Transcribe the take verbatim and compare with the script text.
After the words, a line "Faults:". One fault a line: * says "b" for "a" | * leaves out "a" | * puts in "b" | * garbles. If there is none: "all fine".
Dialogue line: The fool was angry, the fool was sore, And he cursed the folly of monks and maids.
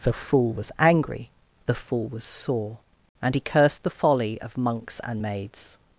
The fool was angry, the fool was sore, And he cursed the folly of monks and maids.
Faults:
all fine